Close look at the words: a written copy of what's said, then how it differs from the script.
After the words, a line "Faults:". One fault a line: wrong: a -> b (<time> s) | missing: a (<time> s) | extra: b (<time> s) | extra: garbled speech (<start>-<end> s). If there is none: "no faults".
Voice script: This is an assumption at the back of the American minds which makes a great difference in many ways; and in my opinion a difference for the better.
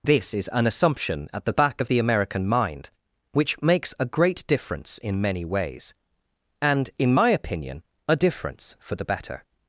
This is an assumption at the back of the American mind which makes a great difference in many ways; and in my opinion a difference for the better.
Faults:
wrong: minds -> mind (2.5 s)